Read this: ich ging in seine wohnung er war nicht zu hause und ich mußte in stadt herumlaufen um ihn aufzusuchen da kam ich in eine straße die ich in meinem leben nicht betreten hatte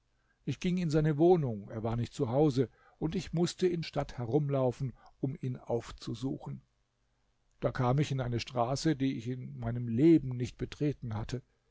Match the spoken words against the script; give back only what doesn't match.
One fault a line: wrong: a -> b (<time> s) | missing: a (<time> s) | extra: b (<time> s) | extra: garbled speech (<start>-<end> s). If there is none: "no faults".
no faults